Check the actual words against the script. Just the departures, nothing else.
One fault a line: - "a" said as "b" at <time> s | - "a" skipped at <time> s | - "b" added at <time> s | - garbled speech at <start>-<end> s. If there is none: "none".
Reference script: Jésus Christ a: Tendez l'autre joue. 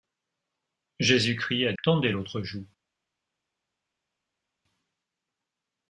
none